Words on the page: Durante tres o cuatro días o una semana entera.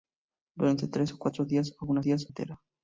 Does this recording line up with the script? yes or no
no